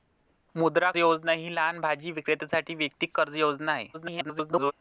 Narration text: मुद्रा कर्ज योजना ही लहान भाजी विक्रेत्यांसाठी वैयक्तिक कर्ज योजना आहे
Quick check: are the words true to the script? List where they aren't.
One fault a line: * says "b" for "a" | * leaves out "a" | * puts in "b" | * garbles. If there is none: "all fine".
* leaves out "कर्ज"
* garbles